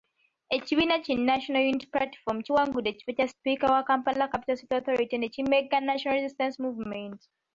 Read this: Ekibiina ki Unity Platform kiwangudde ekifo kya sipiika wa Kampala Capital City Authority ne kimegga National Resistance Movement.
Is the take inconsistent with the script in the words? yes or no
yes